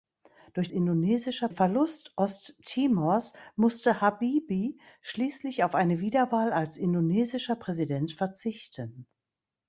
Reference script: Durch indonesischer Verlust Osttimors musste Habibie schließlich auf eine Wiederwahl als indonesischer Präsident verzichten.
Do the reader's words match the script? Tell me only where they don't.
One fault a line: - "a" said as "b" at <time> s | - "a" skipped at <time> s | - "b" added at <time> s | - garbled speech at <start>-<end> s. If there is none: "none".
none